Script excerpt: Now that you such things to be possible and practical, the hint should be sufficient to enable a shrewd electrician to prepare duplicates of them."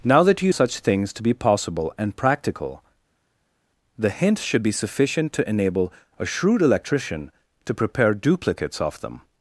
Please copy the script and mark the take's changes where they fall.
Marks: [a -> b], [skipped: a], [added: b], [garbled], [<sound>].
Now that you such things to be possible and practical, the hint should be sufficient to enable a shrewd electrician to prepare duplicates of them."